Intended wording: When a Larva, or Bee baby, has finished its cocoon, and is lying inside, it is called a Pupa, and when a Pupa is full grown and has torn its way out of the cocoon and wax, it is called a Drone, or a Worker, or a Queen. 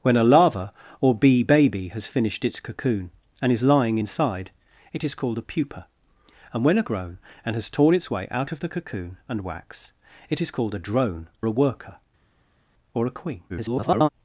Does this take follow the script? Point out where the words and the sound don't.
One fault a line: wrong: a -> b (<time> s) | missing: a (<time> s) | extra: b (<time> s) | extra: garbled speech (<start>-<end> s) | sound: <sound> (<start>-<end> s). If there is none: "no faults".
missing: Pupa is full (6.8 s)
missing: or (11.3 s)
extra: garbled speech (13.5-14.1 s)